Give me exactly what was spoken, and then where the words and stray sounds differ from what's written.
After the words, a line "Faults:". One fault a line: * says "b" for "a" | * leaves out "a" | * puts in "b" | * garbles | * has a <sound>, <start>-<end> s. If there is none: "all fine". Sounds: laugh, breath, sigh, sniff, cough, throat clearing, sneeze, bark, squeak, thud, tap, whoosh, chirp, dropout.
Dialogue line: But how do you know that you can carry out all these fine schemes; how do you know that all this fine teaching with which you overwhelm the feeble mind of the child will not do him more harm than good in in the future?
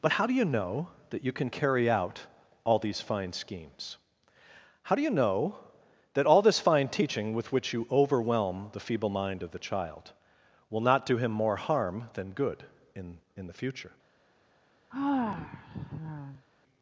But how do you know that you can carry out all these fine schemes; how do you know that all this fine teaching with which you overwhelm the feeble mind of the child will not do him more harm than good in in the future?
Faults:
* has a sigh, 14.9-16.5 s